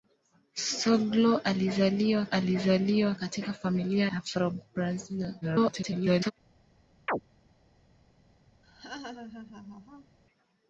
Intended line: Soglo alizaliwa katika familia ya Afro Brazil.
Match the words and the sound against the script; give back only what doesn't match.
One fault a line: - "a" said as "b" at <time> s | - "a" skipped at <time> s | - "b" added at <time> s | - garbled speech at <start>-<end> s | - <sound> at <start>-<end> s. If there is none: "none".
- "alizaliwa" added at 2.2 s
- "ya" skipped at 4.1 s
- garbled speech at 5.4-6.3 s
- chirp at 7.1-7.2 s
- laugh at 8.6-10.2 s